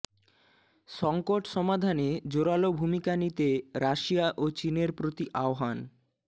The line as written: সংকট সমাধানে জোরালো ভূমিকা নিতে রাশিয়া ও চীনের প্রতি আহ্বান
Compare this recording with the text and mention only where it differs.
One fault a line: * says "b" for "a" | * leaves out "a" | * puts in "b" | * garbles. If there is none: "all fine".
all fine